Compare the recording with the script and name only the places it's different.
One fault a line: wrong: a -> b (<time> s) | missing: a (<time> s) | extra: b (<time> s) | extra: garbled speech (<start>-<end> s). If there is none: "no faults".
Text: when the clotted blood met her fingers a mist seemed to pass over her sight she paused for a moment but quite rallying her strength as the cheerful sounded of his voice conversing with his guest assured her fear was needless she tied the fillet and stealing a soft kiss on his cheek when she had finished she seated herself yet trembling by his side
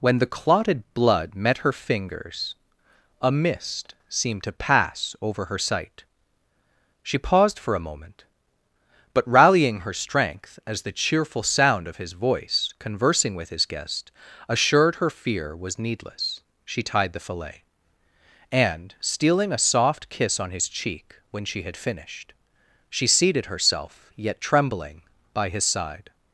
missing: quite (9.3 s)
wrong: sounded -> sound (11.4 s)